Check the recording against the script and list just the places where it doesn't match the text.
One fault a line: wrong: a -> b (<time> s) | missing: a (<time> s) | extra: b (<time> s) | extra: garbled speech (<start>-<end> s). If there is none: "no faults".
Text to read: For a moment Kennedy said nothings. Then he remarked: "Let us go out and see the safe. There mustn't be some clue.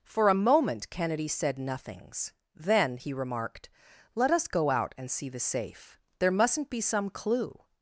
no faults